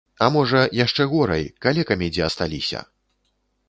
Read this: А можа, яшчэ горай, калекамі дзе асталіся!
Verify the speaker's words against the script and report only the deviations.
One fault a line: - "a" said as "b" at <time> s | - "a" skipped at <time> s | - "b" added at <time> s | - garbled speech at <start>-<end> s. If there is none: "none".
none